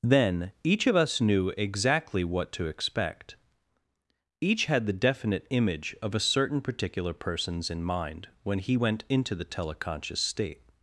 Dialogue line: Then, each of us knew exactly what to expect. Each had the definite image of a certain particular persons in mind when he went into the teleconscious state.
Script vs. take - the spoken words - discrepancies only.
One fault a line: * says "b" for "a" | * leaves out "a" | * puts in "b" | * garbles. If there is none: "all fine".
all fine